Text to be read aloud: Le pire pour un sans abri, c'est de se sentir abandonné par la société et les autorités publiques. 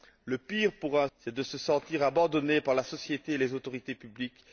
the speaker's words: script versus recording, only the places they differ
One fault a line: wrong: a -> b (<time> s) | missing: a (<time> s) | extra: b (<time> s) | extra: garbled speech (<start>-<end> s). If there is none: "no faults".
missing: sans abri (1.1 s)